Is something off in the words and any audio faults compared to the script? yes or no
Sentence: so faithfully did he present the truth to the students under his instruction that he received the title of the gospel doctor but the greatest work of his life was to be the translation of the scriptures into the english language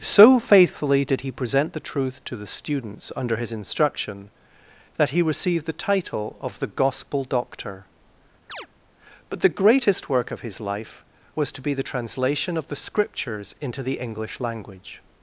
yes